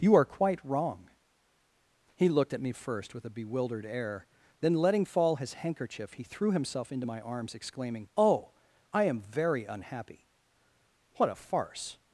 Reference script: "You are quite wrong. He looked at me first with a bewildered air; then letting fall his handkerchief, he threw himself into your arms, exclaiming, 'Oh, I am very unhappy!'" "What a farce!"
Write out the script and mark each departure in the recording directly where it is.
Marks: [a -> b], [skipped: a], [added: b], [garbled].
"You are quite wrong. He looked at me first with a bewildered air; then letting fall his handkerchief, he threw himself into [your -> my] arms, exclaiming, 'Oh, I am very unhappy!'" "What a farce!"